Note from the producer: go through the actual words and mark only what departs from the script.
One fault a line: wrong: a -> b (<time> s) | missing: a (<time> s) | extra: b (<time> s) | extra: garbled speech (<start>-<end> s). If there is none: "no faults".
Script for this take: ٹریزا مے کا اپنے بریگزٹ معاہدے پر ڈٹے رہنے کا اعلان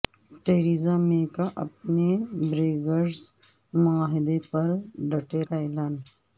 missing: رہنے (5.4 s)